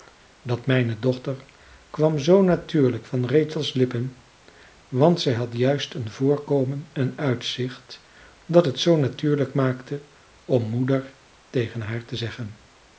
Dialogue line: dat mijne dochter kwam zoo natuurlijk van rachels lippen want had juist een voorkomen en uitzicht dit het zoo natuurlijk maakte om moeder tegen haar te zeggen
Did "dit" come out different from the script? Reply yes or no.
yes